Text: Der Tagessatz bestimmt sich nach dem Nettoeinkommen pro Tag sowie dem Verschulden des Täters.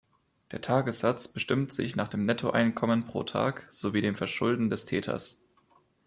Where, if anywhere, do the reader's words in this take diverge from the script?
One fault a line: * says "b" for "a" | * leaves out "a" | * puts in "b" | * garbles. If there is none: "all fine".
all fine